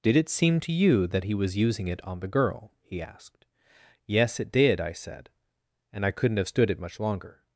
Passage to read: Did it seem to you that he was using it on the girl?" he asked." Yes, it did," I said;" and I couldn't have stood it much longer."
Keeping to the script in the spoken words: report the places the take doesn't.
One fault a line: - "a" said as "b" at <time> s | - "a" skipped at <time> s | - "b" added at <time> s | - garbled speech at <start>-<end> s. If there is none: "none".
none